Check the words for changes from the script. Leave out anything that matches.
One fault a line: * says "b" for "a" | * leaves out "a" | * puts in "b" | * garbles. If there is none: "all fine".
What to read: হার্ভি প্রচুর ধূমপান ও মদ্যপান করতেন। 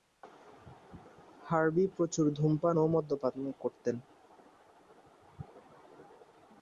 all fine